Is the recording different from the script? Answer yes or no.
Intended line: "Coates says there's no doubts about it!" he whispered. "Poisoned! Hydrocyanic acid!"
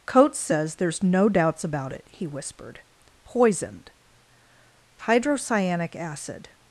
no